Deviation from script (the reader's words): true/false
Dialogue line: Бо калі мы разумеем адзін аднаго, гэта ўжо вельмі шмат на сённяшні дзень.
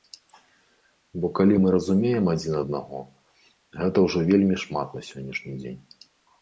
false